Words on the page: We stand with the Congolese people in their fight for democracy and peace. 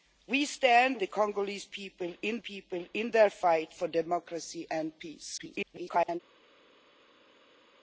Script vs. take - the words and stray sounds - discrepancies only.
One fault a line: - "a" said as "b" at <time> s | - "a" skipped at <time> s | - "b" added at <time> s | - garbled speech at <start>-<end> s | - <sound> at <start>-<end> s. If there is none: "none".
- "with" skipped at 1.0 s
- "people in" added at 2.4 s
- garbled speech at 5.4-6.2 s